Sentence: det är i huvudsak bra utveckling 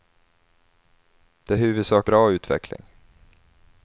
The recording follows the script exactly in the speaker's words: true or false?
true